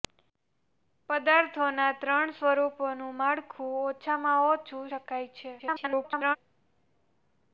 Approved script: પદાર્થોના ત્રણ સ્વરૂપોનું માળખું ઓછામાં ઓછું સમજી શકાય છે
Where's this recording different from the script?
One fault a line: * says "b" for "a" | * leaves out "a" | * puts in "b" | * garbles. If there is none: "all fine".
* leaves out "સમજી"
* garbles